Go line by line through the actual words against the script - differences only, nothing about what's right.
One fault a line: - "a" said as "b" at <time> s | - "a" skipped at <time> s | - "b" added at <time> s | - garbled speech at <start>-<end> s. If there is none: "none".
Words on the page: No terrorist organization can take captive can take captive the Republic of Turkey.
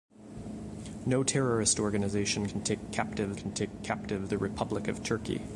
none